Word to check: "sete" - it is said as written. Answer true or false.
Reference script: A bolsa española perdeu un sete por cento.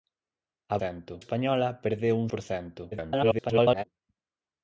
false